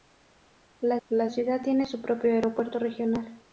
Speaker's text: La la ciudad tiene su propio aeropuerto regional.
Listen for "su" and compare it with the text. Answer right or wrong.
right